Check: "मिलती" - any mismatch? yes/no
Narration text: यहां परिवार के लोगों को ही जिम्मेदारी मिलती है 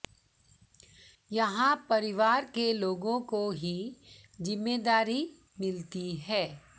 no